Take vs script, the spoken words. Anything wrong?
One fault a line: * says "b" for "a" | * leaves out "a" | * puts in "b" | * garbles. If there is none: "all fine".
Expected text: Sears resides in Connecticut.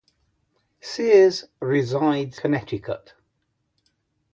* leaves out "in"